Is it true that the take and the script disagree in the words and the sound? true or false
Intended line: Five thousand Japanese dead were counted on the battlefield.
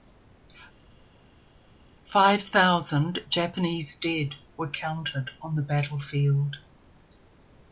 false